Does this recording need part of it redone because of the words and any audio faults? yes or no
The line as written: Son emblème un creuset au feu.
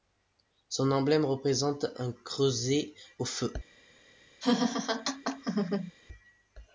yes